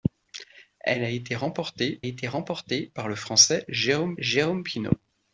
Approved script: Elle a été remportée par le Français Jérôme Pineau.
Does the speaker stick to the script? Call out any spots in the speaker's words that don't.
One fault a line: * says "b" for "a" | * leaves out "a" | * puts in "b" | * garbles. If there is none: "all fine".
* puts in "été remportée"
* puts in "Jérôme"